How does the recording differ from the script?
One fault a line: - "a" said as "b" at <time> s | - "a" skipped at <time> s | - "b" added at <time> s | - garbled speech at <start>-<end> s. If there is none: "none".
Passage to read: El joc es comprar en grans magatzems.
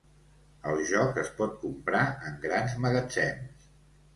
- "pot" added at 1.4 s